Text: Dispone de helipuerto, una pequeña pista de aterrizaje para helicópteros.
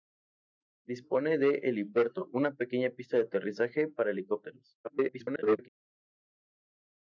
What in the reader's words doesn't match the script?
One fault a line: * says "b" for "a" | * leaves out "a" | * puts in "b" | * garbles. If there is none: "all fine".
* garbles